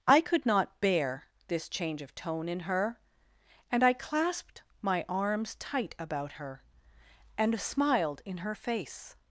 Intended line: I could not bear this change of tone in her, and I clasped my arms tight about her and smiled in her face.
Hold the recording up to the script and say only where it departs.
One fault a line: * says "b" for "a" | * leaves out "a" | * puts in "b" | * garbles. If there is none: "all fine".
all fine